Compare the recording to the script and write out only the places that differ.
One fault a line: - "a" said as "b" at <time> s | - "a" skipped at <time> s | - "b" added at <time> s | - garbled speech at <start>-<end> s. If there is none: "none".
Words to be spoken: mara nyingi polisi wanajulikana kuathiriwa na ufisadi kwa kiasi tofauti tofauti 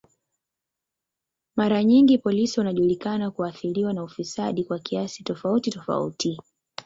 none